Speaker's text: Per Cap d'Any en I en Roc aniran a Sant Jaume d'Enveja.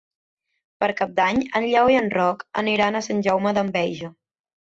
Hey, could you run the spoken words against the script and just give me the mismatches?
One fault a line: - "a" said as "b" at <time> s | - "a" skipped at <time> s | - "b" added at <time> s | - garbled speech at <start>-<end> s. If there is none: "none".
- "Lleó" added at 1.7 s